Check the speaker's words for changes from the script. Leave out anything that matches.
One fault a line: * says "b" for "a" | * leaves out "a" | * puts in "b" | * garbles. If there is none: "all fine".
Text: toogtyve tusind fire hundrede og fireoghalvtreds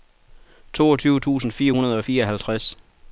all fine